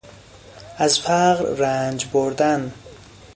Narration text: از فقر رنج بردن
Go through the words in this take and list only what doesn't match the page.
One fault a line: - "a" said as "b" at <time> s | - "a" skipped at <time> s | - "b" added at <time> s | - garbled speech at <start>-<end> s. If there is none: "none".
none